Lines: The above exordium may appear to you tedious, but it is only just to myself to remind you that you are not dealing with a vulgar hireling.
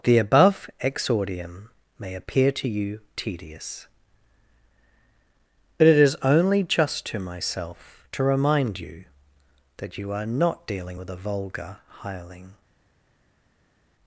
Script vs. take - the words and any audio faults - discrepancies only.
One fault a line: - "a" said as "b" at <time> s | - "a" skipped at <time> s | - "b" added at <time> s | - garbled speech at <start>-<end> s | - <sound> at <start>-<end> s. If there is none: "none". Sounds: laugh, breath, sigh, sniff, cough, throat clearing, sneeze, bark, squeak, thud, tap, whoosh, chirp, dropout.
none